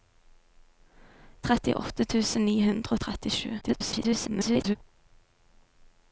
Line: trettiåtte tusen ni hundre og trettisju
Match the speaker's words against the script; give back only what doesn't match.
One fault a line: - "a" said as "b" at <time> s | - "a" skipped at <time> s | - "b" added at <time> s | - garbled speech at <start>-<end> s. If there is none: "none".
- garbled speech at 3.6-4.8 s